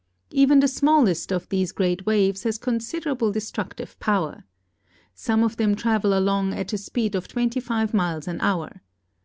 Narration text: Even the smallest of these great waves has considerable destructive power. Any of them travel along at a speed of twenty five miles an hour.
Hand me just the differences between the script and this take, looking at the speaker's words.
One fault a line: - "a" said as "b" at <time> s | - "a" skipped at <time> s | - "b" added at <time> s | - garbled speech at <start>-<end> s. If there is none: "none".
- "Any" said as "Some" at 5.1 s